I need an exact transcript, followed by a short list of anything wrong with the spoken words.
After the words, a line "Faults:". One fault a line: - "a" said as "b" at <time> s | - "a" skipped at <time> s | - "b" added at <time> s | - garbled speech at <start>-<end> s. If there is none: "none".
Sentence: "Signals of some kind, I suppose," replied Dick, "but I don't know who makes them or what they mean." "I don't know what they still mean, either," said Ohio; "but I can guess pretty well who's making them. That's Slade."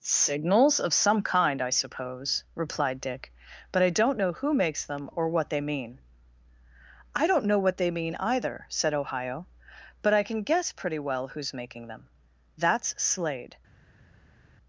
"Signals of some kind, I suppose," replied Dick, "but I don't know who makes them or what they mean." "I don't know what they mean, either," said Ohio; "but I can guess pretty well who's making them. That's Slade."
Faults:
- "still" skipped at 7.9 s